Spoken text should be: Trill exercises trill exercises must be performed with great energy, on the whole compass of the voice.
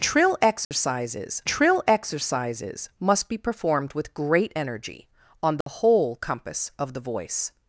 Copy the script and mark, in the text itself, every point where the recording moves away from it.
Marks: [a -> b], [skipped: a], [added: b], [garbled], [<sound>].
Trill exercises [dropout] trill exercises must be performed with great energy, on the [dropout] whole compass of the voice.